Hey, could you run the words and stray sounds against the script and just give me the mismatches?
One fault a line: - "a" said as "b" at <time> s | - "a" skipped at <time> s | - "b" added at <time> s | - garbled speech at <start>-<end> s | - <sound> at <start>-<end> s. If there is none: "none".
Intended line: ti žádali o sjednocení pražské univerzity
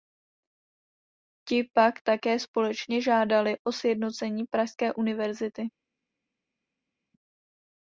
- "pak také společně" added at 1.7 s